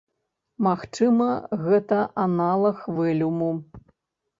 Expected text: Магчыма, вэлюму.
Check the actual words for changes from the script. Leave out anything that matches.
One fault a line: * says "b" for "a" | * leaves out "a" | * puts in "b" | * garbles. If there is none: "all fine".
* puts in "гэта аналаг"